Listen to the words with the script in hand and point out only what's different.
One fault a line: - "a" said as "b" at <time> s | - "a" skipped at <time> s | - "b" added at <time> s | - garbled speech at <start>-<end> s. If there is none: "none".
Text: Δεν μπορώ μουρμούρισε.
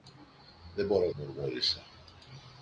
none